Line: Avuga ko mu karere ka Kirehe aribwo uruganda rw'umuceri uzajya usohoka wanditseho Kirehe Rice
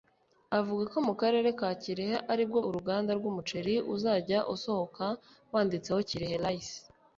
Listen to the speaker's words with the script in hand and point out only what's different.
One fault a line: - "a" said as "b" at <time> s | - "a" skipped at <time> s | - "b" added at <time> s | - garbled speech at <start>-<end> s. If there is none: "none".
none